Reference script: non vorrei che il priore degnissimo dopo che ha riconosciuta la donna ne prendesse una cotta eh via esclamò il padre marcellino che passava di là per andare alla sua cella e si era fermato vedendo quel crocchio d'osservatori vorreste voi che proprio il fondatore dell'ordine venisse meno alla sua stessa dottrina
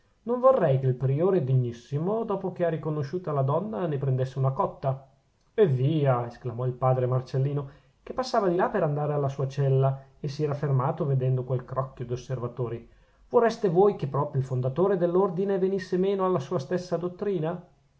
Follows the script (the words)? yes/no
yes